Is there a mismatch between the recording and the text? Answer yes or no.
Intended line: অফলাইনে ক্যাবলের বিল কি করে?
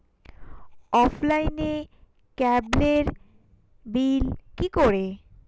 no